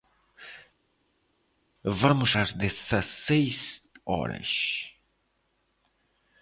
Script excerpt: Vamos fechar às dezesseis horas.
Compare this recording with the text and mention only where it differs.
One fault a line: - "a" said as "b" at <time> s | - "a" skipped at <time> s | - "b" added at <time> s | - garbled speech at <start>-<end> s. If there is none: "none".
- "fechar" skipped at 2.3 s